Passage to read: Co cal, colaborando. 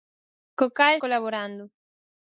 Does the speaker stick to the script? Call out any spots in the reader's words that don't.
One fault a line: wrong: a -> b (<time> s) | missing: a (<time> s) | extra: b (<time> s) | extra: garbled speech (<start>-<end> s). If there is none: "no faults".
no faults